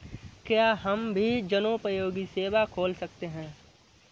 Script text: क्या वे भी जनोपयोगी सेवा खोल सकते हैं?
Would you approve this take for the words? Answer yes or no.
no